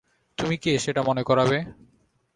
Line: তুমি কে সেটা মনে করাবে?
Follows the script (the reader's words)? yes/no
yes